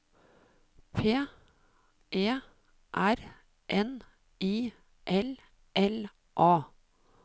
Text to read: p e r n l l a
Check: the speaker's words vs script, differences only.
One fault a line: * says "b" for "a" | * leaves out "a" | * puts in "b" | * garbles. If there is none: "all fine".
* puts in "i"